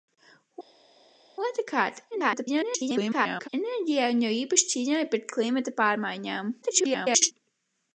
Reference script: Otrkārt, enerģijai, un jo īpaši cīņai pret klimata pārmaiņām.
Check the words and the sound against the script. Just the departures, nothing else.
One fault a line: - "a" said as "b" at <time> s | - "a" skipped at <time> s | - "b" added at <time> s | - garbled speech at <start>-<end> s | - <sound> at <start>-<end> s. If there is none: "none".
- garbled speech at 2.1-3.5 s
- garbled speech at 6.6-7.3 s